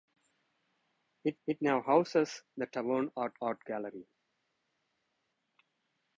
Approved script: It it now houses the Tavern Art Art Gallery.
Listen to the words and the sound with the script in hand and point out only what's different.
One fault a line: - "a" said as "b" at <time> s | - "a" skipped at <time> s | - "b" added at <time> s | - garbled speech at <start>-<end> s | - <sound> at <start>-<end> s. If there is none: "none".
none